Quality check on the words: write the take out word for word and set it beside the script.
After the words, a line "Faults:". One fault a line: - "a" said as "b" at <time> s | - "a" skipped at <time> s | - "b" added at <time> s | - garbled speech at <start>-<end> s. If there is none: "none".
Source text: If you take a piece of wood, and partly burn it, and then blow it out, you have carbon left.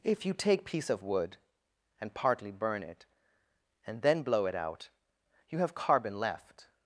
If you take piece of wood, and partly burn it, and then blow it out, you have carbon left.
Faults:
- "a" skipped at 0.7 s